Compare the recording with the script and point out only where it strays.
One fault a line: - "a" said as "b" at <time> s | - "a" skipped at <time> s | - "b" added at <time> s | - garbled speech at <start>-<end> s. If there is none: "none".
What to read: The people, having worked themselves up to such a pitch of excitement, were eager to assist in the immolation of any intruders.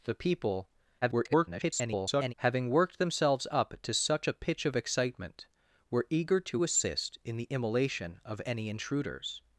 - garbled speech at 1.0-2.3 s